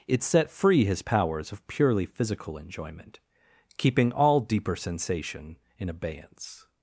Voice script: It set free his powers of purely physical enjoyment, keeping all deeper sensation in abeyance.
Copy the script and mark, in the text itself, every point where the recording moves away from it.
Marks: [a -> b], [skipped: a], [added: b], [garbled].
It set free his powers of purely physical enjoyment, keeping all deeper sensation in abeyance.